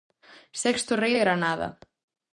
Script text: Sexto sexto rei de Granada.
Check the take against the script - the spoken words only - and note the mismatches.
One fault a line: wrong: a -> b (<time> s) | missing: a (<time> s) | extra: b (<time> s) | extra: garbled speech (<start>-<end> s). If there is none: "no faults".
missing: sexto (0.9 s)